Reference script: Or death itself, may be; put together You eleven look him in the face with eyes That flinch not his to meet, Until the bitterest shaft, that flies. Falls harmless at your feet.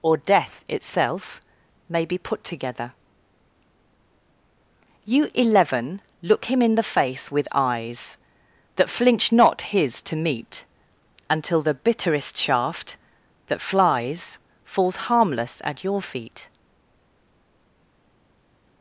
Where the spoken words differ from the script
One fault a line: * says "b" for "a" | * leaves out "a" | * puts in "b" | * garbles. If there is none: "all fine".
all fine